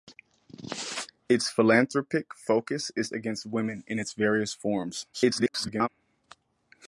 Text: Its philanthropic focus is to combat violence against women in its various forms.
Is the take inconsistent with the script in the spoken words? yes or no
yes